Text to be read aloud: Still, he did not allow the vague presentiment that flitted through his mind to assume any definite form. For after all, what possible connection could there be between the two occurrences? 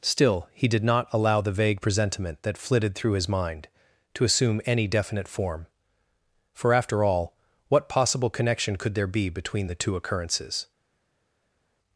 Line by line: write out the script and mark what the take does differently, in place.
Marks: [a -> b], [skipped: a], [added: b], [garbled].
Still, he did not allow the vague presentiment that flitted through his mind to assume any definite form. For after all, what possible connection could there be between the two occurrences?